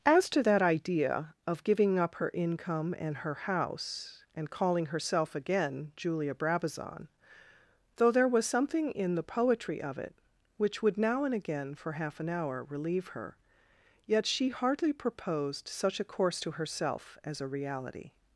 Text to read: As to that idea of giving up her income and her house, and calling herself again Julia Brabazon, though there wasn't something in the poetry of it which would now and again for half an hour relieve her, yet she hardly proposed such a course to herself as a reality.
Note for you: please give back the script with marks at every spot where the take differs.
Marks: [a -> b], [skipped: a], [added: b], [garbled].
As to that idea of giving up her income and her house, and calling herself again Julia Brabazon, though there [wasn't -> was] something in the poetry of it which would now and again for half an hour relieve her, yet she hardly proposed such a course to herself as a reality.